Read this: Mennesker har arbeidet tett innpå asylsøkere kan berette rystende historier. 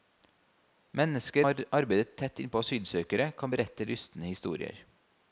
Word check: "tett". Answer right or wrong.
right